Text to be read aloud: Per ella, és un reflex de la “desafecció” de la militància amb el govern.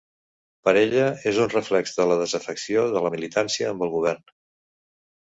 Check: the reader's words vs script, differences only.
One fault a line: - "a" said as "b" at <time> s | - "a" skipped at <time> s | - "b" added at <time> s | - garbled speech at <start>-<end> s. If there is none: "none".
none